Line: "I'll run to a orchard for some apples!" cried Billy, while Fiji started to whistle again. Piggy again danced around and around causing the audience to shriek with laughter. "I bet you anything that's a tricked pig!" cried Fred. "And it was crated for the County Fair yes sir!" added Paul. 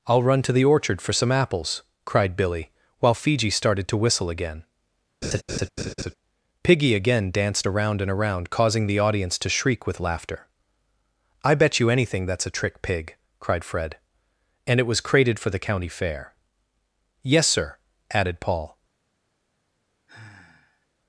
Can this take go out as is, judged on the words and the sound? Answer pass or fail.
fail